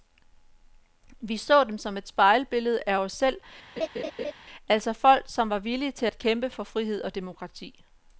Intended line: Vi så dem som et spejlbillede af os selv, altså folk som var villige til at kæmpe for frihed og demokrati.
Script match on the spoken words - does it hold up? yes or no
yes